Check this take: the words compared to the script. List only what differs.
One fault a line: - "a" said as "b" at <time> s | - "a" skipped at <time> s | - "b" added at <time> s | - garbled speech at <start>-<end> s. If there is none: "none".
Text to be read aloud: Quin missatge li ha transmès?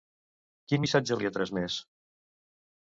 none